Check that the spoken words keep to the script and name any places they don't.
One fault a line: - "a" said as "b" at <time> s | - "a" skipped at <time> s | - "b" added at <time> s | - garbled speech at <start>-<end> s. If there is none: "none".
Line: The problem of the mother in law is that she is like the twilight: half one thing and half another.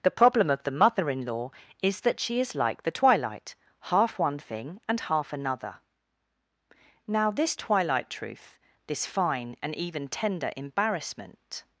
- "Now this twilight truth this fine and even tender embarrassment" added at 7.0 s